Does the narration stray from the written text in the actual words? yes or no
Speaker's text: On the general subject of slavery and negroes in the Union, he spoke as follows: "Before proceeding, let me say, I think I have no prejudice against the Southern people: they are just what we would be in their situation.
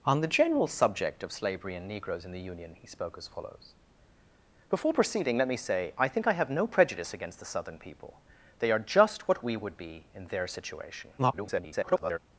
yes